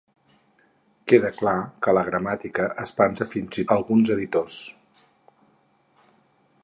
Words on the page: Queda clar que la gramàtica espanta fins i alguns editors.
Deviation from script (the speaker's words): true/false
false